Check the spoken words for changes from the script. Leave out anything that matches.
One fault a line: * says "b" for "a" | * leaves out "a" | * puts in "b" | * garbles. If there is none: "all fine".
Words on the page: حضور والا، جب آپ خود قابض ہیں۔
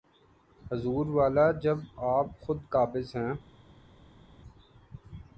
all fine